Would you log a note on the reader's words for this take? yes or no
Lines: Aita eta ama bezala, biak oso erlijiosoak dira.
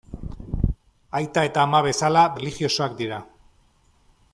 yes